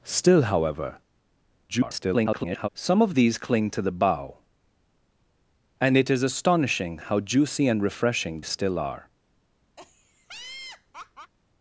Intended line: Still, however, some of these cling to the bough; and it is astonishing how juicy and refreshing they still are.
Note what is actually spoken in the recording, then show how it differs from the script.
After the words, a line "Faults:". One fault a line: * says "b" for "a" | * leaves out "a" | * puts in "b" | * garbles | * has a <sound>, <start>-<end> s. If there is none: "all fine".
Still, however, [garbled] some of these cling to the bough; and it is astonishing how juicy and refreshing still are.
Faults:
* garbles
* leaves out "they"
* has a laugh, 9.8-11.3 s